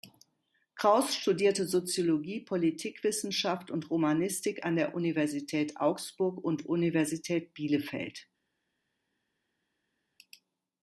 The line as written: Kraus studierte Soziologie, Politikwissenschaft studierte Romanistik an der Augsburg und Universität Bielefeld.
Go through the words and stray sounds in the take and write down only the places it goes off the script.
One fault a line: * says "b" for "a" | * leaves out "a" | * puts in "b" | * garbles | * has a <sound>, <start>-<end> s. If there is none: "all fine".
* says "und" for "studierte"
* puts in "Universität"